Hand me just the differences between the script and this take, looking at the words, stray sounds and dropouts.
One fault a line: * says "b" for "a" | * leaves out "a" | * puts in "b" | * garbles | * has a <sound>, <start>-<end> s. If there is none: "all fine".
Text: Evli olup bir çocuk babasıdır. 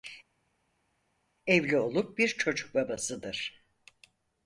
all fine